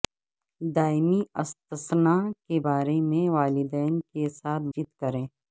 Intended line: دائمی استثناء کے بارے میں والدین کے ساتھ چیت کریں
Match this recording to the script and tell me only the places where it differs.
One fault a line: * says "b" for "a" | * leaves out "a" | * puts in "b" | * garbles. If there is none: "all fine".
all fine